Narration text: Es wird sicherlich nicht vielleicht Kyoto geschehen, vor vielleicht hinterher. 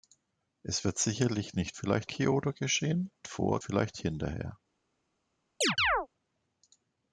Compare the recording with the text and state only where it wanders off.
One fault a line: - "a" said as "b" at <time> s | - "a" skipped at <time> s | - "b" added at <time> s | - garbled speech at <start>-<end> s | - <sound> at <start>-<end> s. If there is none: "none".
- chirp at 5.6-6.1 s